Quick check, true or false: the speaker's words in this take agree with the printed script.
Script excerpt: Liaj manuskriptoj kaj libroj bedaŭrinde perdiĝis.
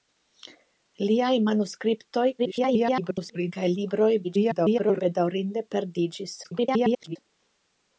false